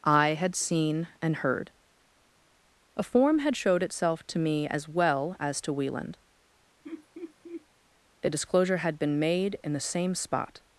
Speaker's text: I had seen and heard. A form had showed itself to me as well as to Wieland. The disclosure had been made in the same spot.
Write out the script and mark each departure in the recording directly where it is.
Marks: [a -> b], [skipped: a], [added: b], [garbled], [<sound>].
I had seen and heard. A form had showed itself to me as well as to Wieland. [laugh] [The -> A] disclosure had been made in the same spot.